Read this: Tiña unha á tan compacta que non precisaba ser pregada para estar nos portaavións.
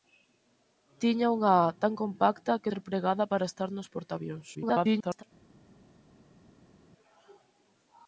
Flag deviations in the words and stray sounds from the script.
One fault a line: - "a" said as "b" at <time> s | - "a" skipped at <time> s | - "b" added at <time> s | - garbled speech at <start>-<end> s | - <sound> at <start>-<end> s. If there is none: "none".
- "non precisaba" skipped at 2.7 s
- garbled speech at 4.5-5.2 s